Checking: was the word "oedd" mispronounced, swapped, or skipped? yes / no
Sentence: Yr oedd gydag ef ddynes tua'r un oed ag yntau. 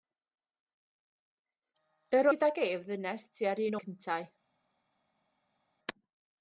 yes